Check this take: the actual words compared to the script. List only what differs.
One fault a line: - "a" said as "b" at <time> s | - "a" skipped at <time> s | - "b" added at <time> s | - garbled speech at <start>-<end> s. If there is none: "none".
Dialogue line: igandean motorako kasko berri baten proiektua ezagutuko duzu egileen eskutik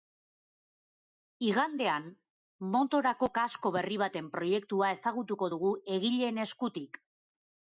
- "duzu" said as "dugu" at 5.6 s